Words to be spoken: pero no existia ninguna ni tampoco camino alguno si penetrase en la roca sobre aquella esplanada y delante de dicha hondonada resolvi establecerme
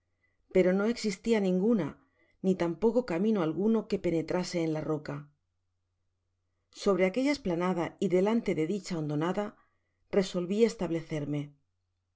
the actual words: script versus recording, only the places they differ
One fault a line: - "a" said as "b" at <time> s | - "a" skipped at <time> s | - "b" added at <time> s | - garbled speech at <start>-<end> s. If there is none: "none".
- "si" said as "que" at 3.9 s